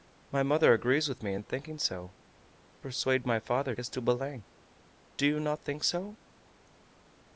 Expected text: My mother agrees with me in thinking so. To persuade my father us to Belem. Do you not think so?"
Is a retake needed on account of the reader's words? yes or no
no